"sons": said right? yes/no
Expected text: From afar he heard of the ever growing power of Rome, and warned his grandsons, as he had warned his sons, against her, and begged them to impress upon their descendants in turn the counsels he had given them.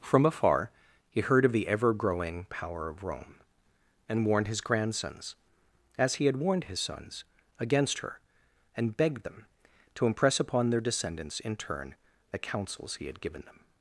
yes